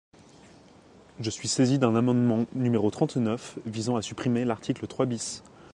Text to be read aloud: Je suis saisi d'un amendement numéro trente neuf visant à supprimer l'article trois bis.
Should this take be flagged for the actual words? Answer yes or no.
no